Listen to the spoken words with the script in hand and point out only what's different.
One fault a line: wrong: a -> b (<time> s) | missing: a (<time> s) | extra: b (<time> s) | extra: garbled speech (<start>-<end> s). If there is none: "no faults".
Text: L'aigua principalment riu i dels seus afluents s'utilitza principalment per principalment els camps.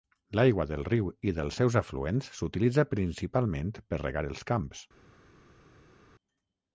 wrong: principalment -> del (0.7 s)
wrong: principalment -> regar (4.0 s)